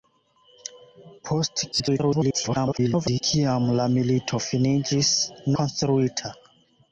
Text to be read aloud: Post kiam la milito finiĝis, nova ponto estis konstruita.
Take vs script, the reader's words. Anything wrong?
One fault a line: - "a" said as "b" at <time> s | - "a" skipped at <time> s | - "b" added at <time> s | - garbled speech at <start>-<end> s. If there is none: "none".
- garbled speech at 1.7-3.2 s
- "nova ponto estis" skipped at 5.1 s